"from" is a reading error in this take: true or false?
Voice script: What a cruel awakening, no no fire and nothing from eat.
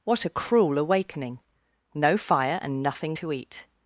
true